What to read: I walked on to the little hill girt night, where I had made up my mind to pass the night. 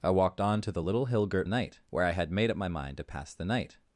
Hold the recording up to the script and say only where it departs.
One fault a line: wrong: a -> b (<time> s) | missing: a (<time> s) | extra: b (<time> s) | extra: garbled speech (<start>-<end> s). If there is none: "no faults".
no faults